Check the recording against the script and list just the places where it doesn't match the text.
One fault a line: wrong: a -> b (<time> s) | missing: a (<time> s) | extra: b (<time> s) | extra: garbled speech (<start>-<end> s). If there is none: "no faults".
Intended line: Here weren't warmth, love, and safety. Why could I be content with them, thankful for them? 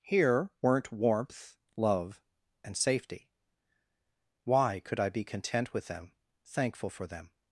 no faults